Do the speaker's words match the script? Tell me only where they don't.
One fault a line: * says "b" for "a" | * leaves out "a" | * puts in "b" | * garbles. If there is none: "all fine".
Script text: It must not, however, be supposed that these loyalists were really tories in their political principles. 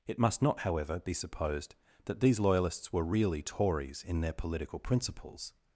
all fine